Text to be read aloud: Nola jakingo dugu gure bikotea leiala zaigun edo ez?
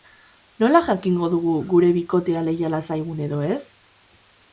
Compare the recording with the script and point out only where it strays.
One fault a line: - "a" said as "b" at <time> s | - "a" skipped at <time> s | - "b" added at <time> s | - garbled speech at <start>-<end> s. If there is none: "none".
none